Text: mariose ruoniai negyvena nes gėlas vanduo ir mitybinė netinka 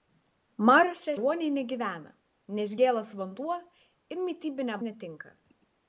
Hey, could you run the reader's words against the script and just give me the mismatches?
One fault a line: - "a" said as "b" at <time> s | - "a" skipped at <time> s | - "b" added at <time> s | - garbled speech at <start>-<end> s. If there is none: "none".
none